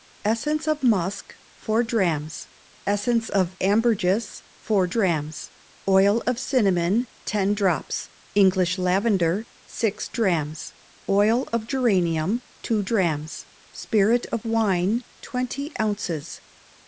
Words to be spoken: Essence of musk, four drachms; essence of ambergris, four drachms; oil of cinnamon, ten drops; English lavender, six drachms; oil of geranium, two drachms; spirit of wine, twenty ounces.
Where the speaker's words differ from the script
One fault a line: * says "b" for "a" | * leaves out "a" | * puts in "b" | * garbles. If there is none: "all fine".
all fine